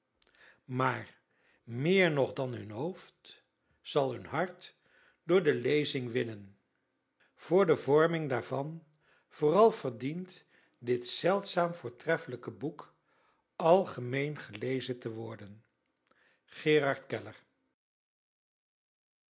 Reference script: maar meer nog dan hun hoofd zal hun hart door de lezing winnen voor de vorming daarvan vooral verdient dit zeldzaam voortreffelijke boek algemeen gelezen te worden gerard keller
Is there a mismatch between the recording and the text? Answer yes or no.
no